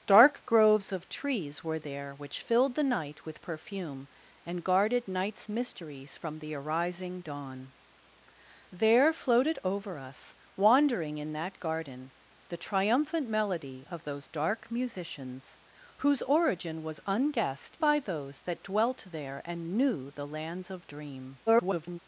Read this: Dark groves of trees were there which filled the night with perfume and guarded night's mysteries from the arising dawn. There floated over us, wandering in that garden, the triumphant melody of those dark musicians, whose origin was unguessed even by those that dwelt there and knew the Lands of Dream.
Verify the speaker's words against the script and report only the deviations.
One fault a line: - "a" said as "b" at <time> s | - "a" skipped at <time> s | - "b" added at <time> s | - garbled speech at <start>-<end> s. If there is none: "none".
- "even" skipped at 17.8 s
- garbled speech at 21.5-22.0 s